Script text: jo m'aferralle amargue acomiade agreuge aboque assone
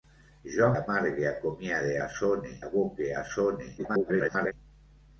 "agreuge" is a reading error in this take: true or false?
true